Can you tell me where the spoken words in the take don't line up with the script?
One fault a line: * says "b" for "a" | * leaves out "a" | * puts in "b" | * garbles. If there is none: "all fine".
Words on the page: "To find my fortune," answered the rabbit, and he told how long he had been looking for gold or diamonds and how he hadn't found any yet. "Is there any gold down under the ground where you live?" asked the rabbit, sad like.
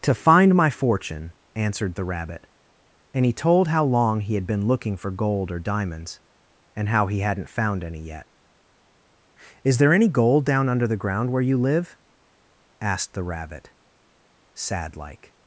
all fine